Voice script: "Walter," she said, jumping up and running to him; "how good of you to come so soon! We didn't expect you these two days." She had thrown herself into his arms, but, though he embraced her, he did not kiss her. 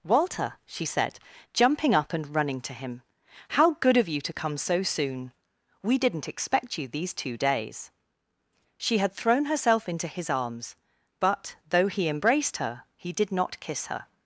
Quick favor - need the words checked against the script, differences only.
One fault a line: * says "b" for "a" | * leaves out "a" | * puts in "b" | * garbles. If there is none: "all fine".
all fine